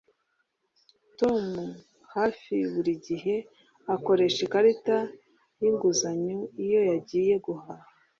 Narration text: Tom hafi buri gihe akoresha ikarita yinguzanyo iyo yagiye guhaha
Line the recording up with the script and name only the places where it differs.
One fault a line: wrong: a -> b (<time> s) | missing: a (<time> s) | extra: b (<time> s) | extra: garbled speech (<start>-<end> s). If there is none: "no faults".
no faults